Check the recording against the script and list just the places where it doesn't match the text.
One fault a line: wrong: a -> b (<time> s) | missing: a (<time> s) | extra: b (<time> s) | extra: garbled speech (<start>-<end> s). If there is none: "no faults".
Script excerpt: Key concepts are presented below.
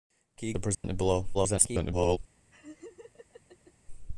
missing: concepts (0.6 s)
extra: garbled speech (1.3-2.2 s)